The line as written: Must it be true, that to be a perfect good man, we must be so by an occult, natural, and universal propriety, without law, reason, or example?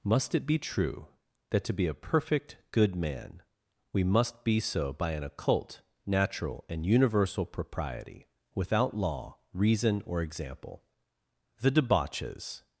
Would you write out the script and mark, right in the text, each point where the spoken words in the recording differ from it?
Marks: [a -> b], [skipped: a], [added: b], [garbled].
Must it be true, that to be a perfect good man, we must be so by an occult, natural, and universal propriety, without law, reason, or example? [added: The debauches]